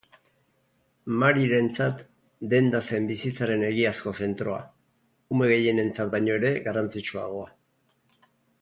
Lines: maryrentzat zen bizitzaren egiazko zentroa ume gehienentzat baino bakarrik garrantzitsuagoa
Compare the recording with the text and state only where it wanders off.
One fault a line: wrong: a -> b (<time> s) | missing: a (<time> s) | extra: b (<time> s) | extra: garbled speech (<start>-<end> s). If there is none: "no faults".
extra: denda (2.5 s)
wrong: bakarrik -> ere (6.4 s)